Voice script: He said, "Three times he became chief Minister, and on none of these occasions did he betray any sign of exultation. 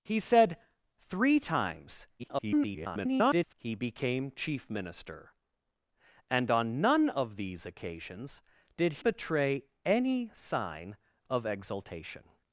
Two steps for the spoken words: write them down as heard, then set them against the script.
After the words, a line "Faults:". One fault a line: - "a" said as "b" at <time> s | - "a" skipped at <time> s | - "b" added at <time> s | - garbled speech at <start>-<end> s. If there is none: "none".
He said, "Three times [garbled] he became chief Minister, and on none of these occasions did betray any sign of exultation.
Faults:
- garbled speech at 2.2-3.5 s
- "he" skipped at 8.9 s